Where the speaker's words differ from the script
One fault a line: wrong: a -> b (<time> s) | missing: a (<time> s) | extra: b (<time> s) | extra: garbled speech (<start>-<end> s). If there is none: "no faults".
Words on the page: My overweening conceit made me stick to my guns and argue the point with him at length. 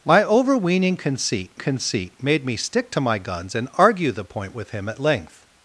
extra: conceit (1.6 s)